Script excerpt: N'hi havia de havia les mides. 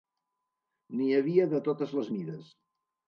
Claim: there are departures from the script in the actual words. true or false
true